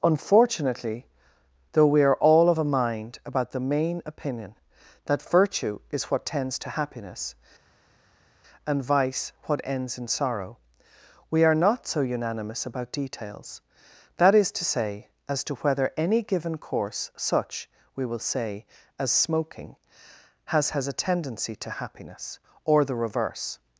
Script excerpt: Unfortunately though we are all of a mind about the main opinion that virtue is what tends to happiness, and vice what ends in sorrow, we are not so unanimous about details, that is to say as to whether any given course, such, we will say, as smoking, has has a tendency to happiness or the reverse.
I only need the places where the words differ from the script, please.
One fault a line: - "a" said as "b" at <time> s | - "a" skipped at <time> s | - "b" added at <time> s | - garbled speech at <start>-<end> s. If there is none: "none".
none